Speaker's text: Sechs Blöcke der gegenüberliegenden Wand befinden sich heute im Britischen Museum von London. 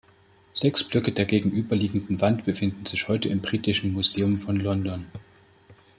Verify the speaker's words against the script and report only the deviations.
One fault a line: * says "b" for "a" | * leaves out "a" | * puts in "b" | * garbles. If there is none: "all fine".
all fine